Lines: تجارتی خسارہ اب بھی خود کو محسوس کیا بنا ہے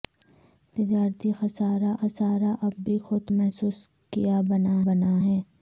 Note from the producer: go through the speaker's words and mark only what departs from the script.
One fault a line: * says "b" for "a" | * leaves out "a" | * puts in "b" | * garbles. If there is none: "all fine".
* puts in "خسارہ"
* leaves out "کو"
* puts in "بنا"